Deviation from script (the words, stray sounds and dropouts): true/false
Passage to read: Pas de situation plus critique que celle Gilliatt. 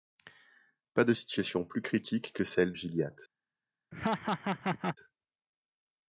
true